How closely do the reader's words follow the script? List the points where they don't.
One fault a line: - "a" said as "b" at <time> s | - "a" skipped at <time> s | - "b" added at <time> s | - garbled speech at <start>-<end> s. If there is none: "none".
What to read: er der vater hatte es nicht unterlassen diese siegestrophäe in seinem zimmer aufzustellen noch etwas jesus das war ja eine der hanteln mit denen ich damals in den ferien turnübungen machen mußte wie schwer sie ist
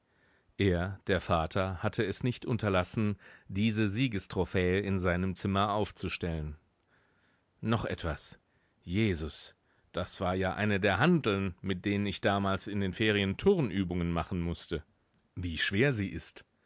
none